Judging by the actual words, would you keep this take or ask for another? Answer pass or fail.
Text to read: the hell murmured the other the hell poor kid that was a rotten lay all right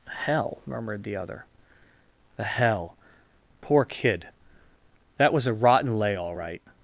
fail